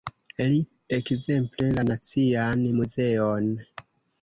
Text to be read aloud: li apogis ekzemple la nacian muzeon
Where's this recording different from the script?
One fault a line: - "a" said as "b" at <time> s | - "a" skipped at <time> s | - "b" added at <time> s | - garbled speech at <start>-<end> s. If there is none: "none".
- "apogis" skipped at 0.6 s